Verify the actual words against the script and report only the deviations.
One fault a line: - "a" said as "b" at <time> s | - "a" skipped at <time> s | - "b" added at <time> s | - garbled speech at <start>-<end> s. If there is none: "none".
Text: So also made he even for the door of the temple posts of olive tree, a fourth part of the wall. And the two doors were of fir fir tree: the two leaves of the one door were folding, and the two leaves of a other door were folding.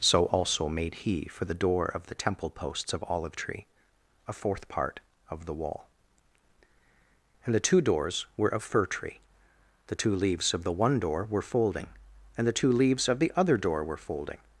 - "even" skipped at 1.3 s
- "fir" skipped at 8.9 s
- "a" said as "the" at 13.2 s